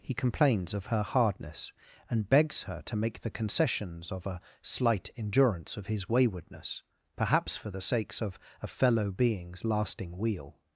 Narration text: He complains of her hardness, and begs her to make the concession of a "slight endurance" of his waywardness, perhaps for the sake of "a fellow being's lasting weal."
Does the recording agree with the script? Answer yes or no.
no